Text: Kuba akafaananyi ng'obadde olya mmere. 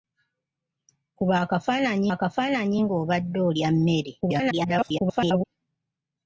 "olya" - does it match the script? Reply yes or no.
yes